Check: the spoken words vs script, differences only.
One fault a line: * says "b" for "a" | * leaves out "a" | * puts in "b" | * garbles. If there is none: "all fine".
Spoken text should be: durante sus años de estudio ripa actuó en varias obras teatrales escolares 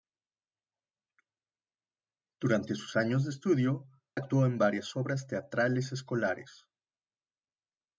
* leaves out "ripa"